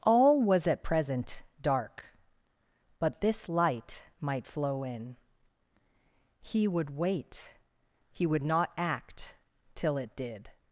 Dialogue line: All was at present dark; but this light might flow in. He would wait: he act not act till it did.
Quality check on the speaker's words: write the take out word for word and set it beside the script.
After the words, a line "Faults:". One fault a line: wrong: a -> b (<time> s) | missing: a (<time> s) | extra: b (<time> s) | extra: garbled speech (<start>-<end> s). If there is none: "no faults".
All was at present dark; but this light might flow in. He would wait: he would not act till it did.
Faults:
wrong: act -> would (8.3 s)